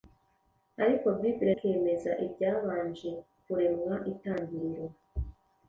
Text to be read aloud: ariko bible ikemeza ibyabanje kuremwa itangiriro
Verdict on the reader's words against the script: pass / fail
pass